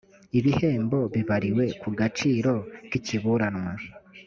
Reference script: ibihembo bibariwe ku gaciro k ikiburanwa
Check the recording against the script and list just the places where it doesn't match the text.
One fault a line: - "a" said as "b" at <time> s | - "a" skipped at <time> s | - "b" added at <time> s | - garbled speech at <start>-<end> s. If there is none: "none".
none